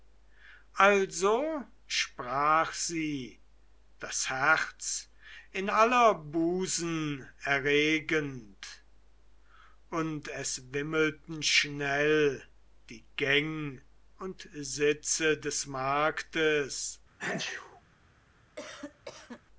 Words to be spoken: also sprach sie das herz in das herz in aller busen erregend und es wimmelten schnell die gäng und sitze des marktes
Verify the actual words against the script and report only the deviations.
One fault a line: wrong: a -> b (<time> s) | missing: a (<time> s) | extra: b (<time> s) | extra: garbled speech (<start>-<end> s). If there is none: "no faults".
missing: das herz in (5.7 s)